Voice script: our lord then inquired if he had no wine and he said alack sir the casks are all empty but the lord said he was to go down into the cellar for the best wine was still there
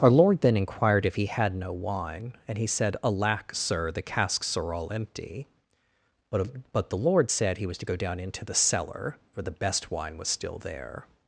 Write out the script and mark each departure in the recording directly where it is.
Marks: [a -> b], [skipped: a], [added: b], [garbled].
our lord then inquired if he had no wine and he said alack sir the casks are all empty but [added: but] the lord said he was to go down into the cellar for the best wine was still there